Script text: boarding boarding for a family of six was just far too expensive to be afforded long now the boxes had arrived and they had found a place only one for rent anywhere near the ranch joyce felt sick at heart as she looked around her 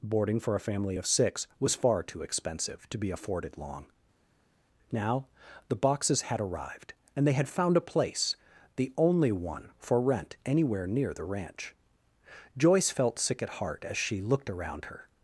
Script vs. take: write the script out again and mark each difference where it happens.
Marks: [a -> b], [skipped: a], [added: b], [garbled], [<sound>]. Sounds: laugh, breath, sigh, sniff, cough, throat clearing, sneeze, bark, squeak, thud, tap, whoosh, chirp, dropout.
boarding [skipped: boarding] for a family of six was [skipped: just] far too expensive to be afforded long now the boxes had arrived and they had found a place [added: the] only one for rent anywhere near the ranch joyce felt sick at heart as she looked around her